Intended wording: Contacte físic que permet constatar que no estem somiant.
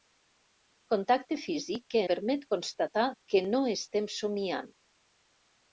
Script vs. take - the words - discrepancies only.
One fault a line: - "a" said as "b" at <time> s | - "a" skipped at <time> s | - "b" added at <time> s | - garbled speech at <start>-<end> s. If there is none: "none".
none